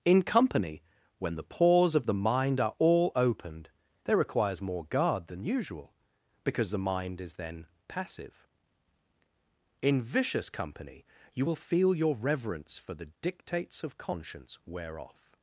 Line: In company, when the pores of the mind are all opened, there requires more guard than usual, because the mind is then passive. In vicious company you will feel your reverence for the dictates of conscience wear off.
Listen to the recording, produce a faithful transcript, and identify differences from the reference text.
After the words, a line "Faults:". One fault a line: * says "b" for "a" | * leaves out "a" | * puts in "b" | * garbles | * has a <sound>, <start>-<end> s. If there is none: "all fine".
In company, when the pores of the mind are all opened, there requires more guard than usual, because the mind is then passive. In vicious company you will feel your reverence for the dictates of conscience wear off.
Faults:
all fine